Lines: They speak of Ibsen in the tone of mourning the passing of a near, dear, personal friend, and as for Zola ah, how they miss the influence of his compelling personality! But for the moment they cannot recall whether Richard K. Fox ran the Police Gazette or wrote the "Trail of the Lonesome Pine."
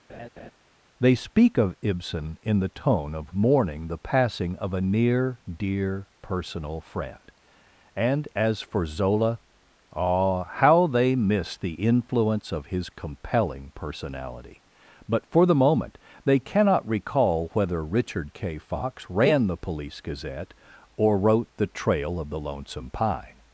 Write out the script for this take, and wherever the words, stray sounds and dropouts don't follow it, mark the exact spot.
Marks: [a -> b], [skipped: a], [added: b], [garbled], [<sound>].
[laugh] They speak of Ibsen in the tone of mourning the passing of a near, dear, personal friend, and as for Zola ah, how they miss the influence of his compelling personality! But for the moment they cannot recall whether Richard K. Fox ran the Police Gazette or wrote the "Trail of the Lonesome Pine."